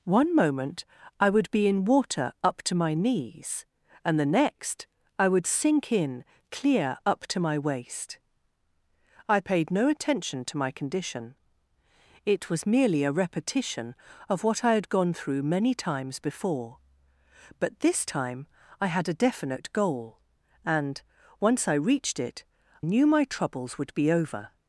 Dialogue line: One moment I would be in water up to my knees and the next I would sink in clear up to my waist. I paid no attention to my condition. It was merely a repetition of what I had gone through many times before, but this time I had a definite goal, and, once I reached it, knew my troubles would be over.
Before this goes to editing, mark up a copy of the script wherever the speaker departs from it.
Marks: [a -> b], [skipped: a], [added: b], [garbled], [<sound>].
One moment I would be in water up to my knees and the next I would sink in clear up to my waist. I paid no attention to my condition. It was merely a repetition of what I had gone through many times before, but this time I had a definite goal, and, once I reached it, knew my troubles would be over.